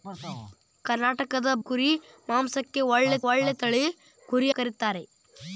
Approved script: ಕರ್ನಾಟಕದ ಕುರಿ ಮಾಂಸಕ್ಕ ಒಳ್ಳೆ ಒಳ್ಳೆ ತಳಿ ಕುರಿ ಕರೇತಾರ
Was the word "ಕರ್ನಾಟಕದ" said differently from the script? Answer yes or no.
no